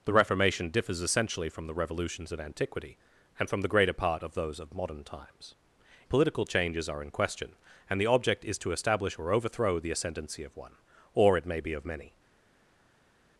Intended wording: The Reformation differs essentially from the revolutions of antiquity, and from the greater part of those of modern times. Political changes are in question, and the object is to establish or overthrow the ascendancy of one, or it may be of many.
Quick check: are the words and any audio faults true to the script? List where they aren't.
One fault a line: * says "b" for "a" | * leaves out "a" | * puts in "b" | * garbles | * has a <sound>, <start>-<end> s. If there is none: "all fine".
all fine